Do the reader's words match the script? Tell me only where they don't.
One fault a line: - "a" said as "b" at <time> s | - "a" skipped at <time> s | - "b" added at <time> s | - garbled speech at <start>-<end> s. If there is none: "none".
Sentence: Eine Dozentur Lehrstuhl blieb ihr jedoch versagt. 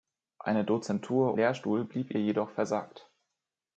none